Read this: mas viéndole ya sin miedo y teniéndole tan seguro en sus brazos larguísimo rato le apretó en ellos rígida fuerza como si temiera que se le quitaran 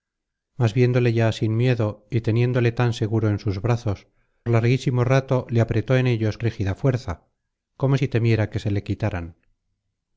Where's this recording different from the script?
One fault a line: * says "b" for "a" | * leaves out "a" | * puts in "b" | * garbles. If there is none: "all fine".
all fine